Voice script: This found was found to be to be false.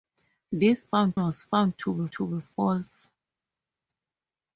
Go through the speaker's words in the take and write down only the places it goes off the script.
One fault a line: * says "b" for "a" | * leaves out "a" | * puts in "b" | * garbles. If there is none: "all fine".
all fine